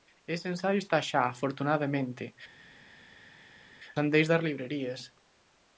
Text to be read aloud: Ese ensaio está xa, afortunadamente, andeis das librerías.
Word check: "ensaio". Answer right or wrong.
right